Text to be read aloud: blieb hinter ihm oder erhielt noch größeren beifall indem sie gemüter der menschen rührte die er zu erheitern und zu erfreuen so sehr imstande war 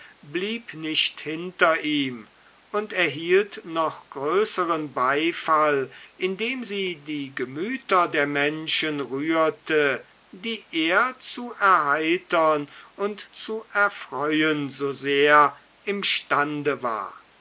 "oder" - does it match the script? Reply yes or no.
no